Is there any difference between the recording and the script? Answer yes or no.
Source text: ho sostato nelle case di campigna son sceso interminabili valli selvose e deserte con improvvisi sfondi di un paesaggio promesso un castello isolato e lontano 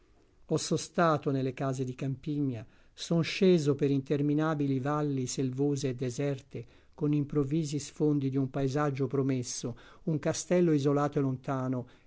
yes